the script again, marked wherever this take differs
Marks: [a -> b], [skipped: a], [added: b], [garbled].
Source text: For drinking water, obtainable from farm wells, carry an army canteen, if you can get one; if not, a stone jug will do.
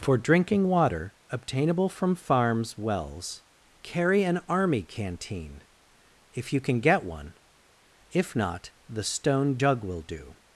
For drinking water, obtainable from [farm -> farms] wells, carry an army canteen, if you can get one; if not, [a -> the] stone jug will do.